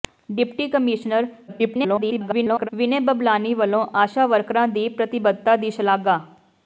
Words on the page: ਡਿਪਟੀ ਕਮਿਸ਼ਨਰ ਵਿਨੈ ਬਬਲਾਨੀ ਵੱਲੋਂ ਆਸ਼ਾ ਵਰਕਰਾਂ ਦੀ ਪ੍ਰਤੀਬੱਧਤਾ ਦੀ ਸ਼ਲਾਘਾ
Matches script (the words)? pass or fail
fail